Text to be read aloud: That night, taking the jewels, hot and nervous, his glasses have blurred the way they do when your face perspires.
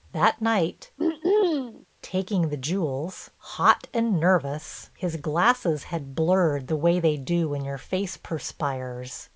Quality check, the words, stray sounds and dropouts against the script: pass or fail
fail